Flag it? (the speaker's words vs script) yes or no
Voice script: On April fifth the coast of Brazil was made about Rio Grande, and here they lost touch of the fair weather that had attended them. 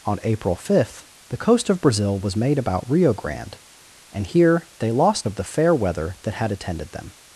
yes